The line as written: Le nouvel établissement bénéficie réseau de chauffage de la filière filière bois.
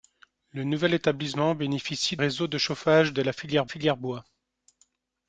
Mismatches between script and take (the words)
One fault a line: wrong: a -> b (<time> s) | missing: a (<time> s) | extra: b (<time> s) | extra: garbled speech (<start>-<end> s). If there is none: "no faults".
no faults